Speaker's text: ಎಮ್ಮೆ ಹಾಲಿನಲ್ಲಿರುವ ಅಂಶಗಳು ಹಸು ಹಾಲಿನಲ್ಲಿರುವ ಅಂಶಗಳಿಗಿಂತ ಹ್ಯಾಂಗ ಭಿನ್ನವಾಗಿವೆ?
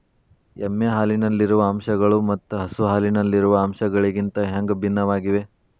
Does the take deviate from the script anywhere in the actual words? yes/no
yes